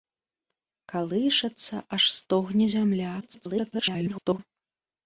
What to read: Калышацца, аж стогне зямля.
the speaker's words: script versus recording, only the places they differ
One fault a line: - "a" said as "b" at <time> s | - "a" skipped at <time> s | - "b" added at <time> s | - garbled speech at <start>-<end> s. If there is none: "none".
- garbled speech at 3.2-4.4 s